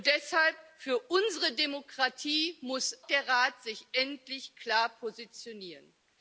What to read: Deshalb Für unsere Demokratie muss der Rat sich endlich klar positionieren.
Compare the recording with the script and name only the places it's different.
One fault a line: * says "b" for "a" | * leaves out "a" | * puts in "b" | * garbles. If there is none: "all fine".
all fine